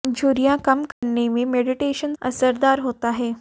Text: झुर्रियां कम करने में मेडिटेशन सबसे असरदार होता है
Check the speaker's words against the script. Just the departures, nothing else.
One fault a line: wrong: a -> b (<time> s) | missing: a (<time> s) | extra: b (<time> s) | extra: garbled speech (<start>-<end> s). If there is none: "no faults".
missing: सबसे (2.1 s)